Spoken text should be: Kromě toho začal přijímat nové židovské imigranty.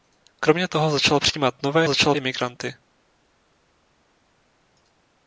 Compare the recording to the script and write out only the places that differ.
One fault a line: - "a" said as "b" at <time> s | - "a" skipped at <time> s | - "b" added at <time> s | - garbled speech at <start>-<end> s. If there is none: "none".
- "židovské" said as "začal" at 1.9 s